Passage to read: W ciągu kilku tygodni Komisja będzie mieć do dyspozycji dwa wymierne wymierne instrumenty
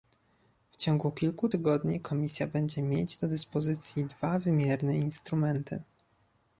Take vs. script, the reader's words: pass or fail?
fail